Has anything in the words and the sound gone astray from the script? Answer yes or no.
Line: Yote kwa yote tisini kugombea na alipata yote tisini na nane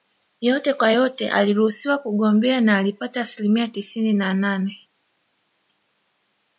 yes